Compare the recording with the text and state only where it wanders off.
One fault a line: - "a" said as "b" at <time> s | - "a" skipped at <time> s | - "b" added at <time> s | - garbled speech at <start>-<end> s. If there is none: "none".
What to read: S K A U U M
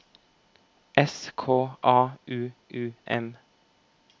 none